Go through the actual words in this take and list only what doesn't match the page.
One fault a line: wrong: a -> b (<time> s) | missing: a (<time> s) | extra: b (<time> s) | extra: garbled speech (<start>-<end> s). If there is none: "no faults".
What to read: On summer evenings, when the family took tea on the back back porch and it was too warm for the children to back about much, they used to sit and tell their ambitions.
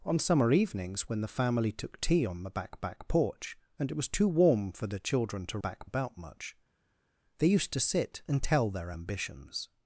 no faults